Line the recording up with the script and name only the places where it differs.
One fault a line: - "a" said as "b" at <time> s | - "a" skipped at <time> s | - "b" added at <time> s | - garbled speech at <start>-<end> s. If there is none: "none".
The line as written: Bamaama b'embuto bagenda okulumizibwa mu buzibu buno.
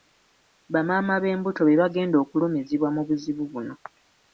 - "be" added at 1.6 s